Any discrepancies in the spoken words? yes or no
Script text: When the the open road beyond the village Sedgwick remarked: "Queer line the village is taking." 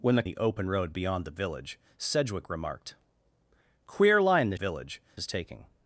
no